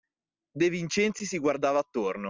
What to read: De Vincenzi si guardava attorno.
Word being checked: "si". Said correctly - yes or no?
yes